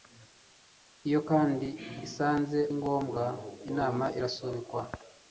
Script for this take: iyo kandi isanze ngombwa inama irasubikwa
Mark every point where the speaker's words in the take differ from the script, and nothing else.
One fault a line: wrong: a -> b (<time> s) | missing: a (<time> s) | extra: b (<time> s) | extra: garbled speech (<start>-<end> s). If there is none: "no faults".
no faults